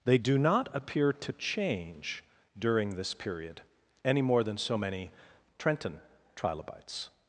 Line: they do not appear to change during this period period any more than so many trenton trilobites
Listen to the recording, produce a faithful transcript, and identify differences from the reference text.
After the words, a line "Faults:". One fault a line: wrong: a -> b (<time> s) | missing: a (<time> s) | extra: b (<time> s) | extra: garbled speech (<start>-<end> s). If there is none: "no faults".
they do not appear to change during this period any more than so many trenton trilobites
Faults:
missing: period (3.6 s)